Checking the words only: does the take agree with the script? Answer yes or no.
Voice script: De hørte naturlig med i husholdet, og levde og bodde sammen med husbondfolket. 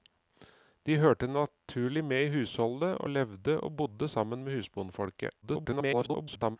no